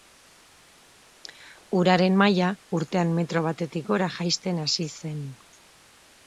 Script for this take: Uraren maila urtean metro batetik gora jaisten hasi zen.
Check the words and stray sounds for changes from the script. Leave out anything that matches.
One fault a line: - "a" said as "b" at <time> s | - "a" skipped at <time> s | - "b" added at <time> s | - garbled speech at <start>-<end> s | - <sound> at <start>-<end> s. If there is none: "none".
none